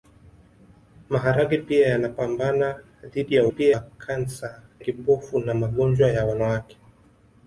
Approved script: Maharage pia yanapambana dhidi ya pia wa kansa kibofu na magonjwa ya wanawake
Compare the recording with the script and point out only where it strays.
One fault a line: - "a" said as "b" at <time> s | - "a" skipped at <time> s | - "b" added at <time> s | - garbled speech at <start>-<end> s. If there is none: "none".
none